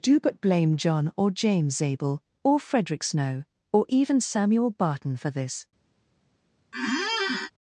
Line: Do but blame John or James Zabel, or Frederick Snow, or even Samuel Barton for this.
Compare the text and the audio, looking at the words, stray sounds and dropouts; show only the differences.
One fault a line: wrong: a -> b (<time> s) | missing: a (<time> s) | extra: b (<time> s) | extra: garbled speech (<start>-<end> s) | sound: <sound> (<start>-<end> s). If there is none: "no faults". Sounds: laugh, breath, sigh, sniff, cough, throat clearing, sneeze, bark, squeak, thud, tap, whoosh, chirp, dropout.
sound: squeak (6.7-7.5 s)